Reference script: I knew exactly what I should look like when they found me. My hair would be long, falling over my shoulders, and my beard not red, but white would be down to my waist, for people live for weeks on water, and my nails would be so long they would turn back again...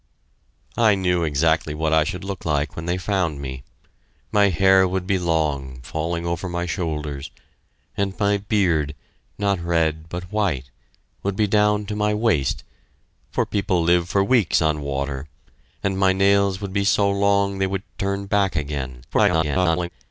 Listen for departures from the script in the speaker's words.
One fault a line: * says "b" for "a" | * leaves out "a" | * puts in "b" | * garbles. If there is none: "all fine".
* garbles